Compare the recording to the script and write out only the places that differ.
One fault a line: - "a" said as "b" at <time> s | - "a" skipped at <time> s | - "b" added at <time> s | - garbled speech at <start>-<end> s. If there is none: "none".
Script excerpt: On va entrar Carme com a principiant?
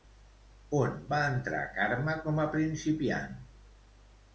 none